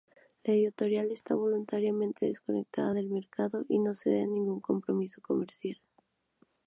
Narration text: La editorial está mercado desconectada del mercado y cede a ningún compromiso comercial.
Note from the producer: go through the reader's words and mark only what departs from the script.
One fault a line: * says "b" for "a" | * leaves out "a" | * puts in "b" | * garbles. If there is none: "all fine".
* says "voluntariamente" for "mercado"
* puts in "no"